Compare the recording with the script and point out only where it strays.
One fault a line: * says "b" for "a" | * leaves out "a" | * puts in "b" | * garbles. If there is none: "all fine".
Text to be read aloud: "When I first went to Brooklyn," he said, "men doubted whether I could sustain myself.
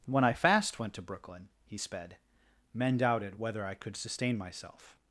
* says "fast" for "first"
* says "sped" for "said"